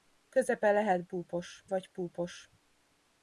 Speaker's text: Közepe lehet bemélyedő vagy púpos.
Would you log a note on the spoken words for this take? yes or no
yes